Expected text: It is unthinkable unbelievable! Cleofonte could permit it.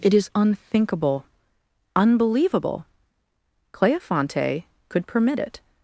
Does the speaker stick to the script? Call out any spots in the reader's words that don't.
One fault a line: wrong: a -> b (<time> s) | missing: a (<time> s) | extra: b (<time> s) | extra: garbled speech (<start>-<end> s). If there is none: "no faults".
no faults